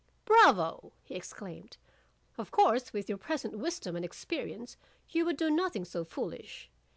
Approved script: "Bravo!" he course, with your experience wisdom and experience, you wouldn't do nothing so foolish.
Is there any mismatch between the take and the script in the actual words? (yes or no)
yes